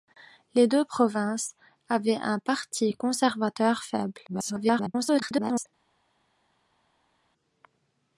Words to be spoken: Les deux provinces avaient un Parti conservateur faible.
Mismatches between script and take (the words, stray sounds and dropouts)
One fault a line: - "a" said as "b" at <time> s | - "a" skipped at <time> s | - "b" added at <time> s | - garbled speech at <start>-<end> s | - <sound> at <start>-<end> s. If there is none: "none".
- garbled speech at 4.3-5.7 s